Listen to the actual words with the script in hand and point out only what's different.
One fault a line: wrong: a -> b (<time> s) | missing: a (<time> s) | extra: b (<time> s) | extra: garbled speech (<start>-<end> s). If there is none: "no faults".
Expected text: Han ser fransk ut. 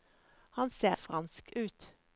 no faults